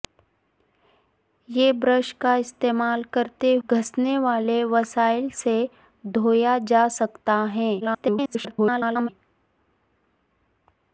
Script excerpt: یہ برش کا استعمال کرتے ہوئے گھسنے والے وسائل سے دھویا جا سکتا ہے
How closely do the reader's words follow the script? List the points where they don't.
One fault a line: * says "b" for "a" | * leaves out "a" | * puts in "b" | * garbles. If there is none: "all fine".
* leaves out "ہوئے"
* garbles